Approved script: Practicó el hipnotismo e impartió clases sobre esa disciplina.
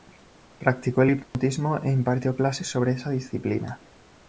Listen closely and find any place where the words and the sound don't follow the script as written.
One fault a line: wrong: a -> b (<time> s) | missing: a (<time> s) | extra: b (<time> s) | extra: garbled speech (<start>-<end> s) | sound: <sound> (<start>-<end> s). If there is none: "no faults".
sound: dropout (1.2-1.3 s)